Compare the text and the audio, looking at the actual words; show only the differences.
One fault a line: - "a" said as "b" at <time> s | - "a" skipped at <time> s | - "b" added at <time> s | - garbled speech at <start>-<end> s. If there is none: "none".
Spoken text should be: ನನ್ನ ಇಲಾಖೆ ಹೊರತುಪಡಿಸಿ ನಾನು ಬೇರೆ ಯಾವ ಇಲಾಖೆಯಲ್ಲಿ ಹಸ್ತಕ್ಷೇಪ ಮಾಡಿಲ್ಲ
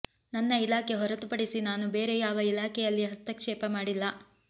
none